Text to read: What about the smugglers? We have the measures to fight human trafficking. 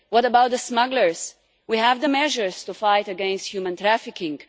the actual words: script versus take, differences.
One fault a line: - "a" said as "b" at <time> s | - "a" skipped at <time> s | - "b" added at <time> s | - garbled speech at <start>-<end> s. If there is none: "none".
- "against" added at 3.1 s